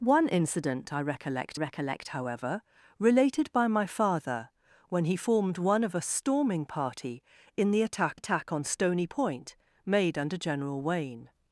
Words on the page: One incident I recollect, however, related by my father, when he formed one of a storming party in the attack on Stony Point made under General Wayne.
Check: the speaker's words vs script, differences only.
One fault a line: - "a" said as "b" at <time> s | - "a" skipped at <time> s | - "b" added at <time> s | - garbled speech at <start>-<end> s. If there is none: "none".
- "recollect" added at 1.5 s
- "attack" added at 8.1 s